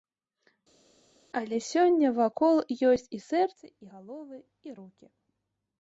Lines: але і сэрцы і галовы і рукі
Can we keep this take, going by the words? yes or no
no